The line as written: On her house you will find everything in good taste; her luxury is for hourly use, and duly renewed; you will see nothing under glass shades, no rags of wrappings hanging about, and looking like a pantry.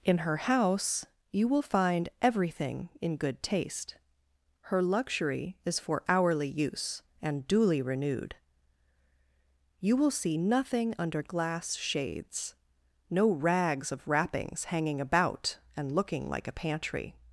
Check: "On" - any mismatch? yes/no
yes